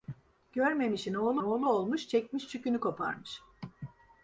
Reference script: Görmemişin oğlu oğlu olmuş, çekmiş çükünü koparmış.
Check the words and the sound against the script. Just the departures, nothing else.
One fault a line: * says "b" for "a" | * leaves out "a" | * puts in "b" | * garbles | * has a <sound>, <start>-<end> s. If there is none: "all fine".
all fine